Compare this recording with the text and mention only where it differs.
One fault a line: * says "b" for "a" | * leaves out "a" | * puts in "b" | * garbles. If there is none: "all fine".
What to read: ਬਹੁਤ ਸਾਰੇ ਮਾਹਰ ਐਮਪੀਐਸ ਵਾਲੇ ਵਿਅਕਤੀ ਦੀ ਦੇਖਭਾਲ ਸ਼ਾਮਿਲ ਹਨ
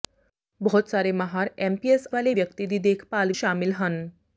all fine